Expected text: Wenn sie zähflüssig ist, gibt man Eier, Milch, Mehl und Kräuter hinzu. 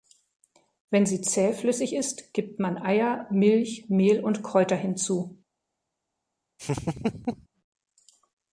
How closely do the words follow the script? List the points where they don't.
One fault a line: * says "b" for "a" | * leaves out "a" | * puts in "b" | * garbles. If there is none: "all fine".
all fine